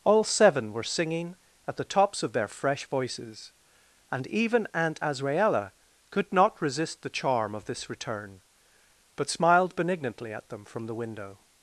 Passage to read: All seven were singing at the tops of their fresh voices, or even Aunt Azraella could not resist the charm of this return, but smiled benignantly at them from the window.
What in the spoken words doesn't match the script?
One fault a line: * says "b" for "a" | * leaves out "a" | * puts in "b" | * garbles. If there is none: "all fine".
* says "and" for "or"